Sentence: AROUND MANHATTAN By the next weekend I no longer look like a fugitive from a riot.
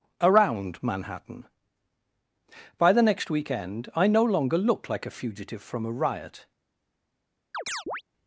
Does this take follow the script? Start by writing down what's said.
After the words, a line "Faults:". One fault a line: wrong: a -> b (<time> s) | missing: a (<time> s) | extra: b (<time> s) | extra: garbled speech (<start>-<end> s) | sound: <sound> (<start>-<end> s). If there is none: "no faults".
AROUND MANHATTAN By the next weekend I no longer looked like a fugitive from a riot.
Faults:
wrong: look -> looked (4.6 s)
sound: chirp (7.5-8.0 s)